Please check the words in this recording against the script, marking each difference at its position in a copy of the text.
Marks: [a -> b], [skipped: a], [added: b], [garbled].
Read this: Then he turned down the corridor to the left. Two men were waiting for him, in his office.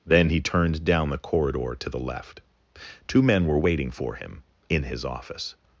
Then he turned down the corridor to the left. Two men were waiting for him, in his office.